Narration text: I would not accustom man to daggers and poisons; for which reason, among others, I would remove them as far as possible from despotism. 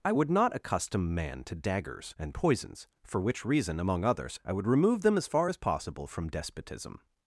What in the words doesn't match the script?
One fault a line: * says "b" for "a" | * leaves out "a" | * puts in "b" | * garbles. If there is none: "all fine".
all fine